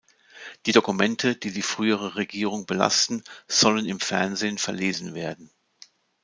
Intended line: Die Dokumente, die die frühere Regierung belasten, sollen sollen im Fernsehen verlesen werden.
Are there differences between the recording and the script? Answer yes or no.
yes